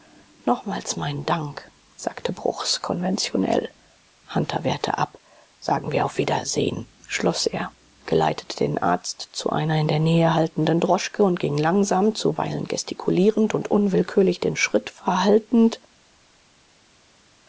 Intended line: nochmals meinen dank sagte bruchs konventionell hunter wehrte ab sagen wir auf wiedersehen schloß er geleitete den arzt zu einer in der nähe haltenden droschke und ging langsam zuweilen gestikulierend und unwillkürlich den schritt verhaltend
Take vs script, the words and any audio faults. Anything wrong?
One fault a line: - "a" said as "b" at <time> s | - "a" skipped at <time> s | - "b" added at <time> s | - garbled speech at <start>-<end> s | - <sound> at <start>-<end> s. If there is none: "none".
none